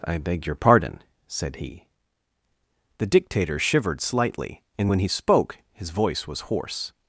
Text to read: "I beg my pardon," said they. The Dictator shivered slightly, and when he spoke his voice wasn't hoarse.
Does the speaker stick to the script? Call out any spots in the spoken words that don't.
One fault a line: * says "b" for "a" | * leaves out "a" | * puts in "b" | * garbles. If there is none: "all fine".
* says "your" for "my"
* says "he" for "they"
* says "was" for "wasn't"